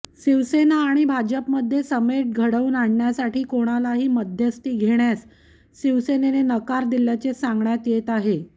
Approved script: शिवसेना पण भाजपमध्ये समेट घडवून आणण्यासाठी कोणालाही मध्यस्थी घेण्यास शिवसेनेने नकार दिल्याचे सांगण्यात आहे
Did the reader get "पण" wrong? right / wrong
wrong